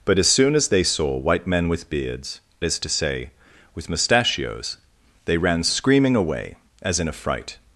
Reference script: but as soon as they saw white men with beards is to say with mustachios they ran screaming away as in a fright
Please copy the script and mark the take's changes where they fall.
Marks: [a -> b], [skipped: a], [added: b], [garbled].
but as soon as they saw white men with beards is to say with mustachios they ran screaming away as in a fright